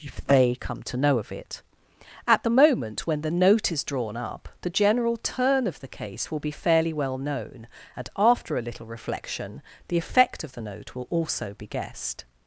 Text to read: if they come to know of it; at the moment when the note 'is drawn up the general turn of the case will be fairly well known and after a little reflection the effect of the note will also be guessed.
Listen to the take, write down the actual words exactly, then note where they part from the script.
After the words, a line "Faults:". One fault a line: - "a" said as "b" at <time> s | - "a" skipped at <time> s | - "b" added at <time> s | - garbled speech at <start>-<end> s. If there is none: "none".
if they come to know of it; at the moment when the note 'is drawn up the general turn of the case will be fairly well known and after a little reflection the effect of the note will also be guessed.
Faults:
none